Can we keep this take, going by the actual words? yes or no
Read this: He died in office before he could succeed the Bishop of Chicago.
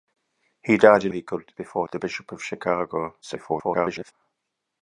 no